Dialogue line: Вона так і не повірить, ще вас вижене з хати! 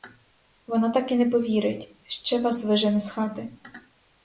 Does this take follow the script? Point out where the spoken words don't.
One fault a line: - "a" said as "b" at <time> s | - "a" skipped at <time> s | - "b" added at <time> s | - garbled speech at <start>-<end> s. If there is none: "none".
none